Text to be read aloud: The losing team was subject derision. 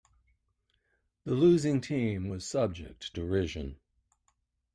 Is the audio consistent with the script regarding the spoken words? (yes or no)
yes